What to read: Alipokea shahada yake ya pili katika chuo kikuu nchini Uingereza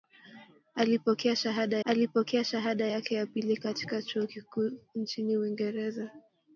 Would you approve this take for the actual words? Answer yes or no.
no